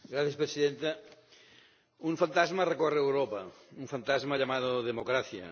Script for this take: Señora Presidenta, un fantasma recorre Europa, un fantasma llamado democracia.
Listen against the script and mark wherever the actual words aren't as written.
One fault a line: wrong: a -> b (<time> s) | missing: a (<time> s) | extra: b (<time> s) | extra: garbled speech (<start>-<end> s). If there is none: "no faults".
no faults